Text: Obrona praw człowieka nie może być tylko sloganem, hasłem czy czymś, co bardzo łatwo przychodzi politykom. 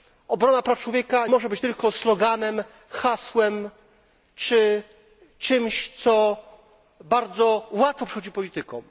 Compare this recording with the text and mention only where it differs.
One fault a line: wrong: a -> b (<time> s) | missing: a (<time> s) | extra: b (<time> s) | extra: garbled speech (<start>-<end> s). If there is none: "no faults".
missing: nie (1.3 s)